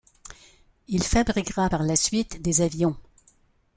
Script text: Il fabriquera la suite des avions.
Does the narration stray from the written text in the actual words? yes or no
yes